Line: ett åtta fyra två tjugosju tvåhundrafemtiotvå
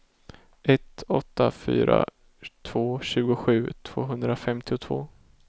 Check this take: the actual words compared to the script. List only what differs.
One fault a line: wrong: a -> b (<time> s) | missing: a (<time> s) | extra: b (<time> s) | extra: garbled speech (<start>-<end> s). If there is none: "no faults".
no faults